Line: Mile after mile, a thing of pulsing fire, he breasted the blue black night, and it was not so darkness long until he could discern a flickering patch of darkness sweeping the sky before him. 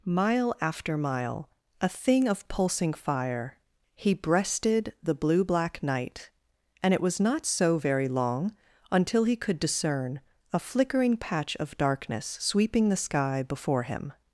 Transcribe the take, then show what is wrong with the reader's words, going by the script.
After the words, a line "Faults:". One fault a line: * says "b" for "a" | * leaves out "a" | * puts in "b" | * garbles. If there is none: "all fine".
Mile after mile, a thing of pulsing fire, he breasted the blue black night, and it was not so very long until he could discern a flickering patch of darkness sweeping the sky before him.
Faults:
* says "very" for "darkness"